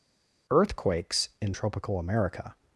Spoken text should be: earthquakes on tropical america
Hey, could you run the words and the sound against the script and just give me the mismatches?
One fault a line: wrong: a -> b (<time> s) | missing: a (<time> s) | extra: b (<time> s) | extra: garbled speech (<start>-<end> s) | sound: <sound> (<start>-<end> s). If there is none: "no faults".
wrong: on -> in (1.4 s)